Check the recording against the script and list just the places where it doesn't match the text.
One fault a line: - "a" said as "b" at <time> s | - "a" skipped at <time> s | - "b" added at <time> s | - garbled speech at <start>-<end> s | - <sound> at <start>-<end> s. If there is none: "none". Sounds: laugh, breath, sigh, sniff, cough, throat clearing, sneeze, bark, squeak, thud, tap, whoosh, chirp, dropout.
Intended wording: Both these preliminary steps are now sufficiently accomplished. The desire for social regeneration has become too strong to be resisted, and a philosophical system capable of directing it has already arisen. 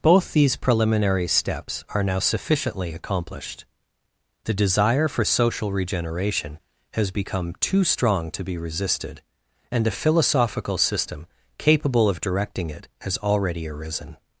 none